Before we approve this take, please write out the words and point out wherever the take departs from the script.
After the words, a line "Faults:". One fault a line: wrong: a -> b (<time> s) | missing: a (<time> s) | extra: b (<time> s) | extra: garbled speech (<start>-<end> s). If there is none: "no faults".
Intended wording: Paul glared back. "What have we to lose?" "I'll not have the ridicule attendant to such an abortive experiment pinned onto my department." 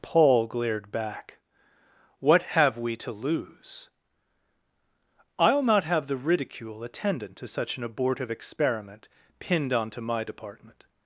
Paul glared back. "What have we to lose?" "I'll not have the ridicule attendant to such an abortive experiment pinned onto my department."
Faults:
no faults